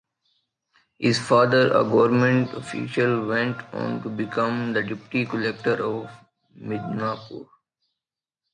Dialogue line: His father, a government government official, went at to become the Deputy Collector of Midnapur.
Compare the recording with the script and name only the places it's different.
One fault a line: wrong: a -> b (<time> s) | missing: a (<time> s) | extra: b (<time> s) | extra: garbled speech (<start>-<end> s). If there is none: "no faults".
missing: government (2.5 s)
wrong: at -> on (3.7 s)